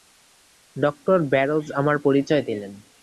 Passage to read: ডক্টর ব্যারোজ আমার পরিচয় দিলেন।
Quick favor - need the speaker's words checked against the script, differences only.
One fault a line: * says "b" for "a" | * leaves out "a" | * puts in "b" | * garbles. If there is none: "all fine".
all fine